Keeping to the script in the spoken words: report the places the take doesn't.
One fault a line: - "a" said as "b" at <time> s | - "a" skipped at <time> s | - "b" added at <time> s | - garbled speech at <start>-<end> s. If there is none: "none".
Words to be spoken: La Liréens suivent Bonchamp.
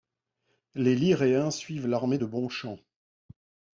- "La" said as "Les" at 0.7 s
- "l'armée de" added at 1.9 s